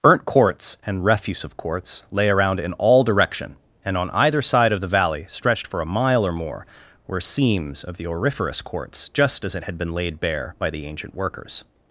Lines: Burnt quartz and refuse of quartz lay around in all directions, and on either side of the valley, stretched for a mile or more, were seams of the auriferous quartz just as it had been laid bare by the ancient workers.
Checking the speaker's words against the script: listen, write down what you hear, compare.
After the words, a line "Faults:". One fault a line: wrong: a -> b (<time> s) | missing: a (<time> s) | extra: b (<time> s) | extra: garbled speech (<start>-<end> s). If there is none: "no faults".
Burnt quartz and refuse of quartz lay around in all direction, and on either side of the valley, stretched for a mile or more, were seams of the auriferous quartz just as it had been laid bare by the ancient workers.
Faults:
wrong: directions -> direction (3.0 s)